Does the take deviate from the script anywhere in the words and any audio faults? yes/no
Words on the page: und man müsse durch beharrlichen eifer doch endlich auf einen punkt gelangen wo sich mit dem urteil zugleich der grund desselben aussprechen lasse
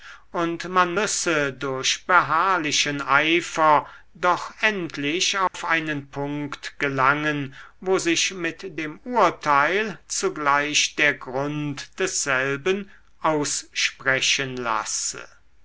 yes